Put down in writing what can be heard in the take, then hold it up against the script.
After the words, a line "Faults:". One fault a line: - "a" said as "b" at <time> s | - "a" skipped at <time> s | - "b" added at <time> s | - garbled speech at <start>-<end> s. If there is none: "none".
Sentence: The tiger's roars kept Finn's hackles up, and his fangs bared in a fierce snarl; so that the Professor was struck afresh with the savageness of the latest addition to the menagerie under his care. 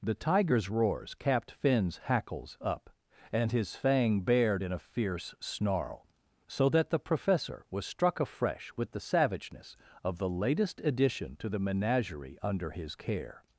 The tiger's roars capped Finn's hackles up, and his fang bared in a fierce snarl; so that the Professor was struck afresh with the savageness of the latest addition to the menagerie under his care.
Faults:
- "kept" said as "capped" at 1.1 s
- "fangs" said as "fang" at 3.8 s